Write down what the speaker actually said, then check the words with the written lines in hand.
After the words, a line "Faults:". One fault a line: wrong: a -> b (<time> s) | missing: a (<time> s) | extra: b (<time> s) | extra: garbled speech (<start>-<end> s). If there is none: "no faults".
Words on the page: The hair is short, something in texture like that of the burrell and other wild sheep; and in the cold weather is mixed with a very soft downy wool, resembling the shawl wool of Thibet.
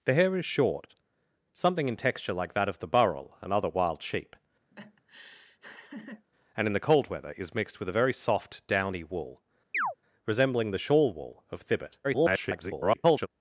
The hair is short, something in texture like that of the burrell and other wild sheep; and in the cold weather is mixed with a very soft downy wool, resembling the shawl wool of Thibet. [garbled]
Faults:
extra: garbled speech (12.0-13.3 s)